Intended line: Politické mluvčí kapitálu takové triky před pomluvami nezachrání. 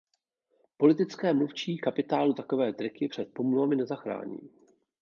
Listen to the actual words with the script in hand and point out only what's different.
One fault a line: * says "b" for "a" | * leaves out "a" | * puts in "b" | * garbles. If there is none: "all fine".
all fine